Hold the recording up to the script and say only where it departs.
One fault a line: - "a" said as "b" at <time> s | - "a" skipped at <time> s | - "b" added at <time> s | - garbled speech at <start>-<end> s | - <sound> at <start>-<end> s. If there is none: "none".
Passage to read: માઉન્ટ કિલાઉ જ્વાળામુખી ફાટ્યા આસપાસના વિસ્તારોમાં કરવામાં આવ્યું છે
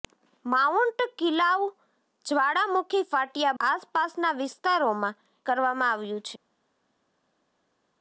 none